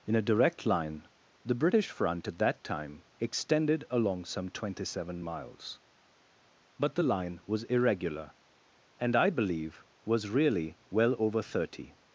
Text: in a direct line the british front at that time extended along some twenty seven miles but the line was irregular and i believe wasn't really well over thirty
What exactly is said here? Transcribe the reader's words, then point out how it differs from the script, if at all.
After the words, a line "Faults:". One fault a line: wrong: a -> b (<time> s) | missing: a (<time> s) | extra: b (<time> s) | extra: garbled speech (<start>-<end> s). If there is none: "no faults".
in a direct line the british front at that time extended along some twenty seven miles but the line was irregular and i believe was really well over thirty
Faults:
wrong: wasn't -> was (10.0 s)